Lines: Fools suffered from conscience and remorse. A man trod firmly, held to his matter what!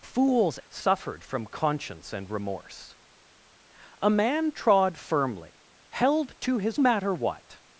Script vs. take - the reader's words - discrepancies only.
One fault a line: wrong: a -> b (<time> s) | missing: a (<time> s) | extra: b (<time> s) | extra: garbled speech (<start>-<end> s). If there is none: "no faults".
no faults